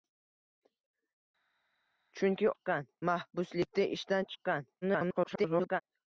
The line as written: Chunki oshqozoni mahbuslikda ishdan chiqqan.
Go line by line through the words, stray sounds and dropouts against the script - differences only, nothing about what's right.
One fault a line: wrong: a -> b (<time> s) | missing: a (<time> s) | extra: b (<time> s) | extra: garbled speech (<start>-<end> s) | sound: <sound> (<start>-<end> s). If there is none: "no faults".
wrong: oshqozoni -> chiqqan (2.5 s)
extra: garbled speech (4.8-5.8 s)